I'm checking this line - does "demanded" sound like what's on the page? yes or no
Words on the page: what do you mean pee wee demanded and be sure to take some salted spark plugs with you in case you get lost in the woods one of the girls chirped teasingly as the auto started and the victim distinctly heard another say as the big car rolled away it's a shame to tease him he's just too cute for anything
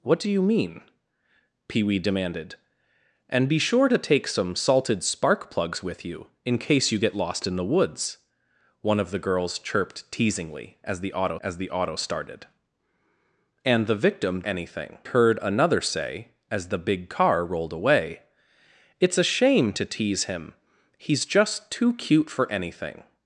yes